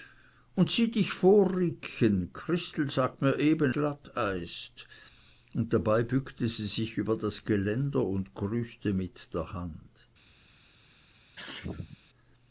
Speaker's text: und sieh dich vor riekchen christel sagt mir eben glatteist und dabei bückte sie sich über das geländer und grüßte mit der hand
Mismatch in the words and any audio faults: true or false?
true